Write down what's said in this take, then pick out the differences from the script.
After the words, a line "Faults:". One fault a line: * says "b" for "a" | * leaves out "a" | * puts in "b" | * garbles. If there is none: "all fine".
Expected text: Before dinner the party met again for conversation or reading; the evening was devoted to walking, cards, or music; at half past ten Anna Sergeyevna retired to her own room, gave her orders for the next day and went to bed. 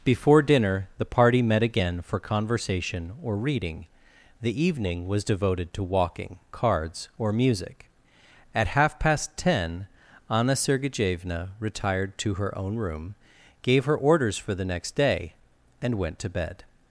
Before dinner the party met again for conversation or reading; the evening was devoted to walking, cards, or music; at half past ten Anna Sergeyevna retired to her own room, gave her orders for the next day and went to bed.
Faults:
all fine